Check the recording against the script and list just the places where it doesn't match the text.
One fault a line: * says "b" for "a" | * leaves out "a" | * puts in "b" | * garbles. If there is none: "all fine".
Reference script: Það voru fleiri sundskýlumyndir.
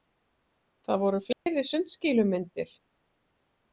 all fine